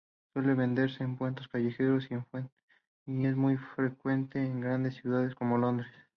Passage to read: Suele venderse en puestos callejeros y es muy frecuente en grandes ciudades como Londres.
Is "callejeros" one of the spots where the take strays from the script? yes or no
no